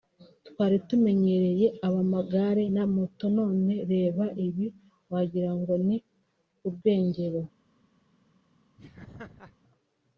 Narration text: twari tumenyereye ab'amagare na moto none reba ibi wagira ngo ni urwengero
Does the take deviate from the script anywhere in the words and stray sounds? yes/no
yes